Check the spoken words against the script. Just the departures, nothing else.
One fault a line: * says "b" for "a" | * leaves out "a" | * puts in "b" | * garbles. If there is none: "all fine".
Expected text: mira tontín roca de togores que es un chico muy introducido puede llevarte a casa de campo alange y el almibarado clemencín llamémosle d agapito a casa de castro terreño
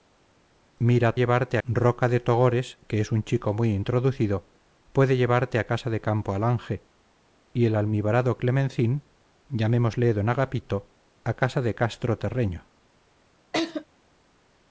* says "llevarte" for "tontín"